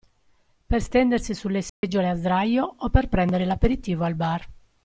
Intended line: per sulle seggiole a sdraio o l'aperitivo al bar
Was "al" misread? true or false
false